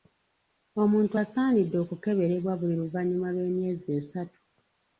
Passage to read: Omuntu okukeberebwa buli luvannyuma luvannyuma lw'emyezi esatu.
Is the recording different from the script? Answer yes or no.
yes